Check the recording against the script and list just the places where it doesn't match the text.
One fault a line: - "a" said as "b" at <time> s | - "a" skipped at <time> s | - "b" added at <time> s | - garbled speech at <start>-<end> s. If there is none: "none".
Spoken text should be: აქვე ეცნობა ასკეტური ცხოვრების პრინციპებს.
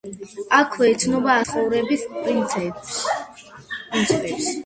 - "ასკეტური" skipped at 1.3 s